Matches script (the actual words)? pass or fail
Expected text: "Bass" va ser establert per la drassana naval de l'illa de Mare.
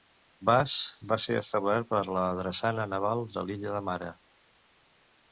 pass